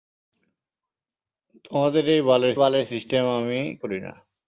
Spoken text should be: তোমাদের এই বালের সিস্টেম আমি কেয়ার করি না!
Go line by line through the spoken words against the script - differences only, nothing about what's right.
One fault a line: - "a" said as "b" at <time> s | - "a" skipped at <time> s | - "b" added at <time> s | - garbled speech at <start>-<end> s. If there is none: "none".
- "বালের" added at 2.5 s
- "কেয়ার" skipped at 3.6 s